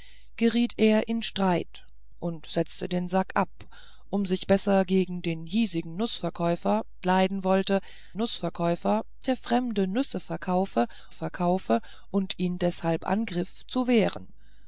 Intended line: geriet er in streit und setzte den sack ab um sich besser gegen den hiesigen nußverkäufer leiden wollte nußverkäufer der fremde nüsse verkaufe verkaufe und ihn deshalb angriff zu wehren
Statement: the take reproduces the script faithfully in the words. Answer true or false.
true